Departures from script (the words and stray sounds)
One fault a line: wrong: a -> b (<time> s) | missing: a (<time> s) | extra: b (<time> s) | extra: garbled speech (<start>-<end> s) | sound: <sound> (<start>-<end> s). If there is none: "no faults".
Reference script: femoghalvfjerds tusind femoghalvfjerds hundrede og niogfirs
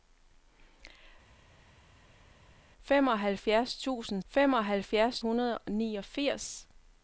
no faults